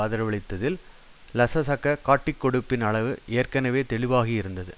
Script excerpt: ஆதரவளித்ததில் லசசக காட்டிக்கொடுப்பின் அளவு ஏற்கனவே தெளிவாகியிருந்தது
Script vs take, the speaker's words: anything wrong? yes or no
no